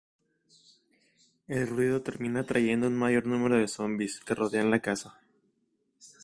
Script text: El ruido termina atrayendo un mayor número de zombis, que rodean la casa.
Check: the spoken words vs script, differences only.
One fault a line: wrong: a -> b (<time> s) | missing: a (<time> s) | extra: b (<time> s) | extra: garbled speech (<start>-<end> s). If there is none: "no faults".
no faults